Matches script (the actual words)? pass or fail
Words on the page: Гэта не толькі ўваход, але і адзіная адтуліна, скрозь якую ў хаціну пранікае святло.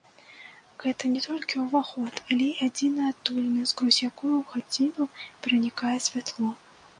pass